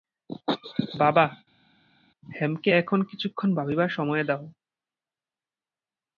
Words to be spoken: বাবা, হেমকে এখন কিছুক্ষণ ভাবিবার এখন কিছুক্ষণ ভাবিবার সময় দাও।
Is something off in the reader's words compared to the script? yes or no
yes